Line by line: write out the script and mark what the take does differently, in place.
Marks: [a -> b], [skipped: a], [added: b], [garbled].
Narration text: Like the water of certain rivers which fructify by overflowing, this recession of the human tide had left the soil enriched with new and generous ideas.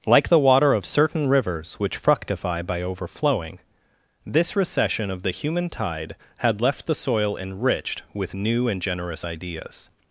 Like the water of certain rivers which fructify by overflowing, this recession of the human tide had left the soil enriched with new and generous ideas.